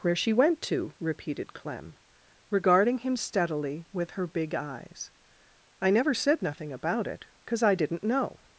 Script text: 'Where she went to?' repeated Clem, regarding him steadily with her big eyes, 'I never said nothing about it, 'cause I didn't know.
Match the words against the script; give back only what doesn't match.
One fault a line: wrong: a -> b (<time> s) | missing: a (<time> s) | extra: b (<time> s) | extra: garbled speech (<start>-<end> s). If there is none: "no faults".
no faults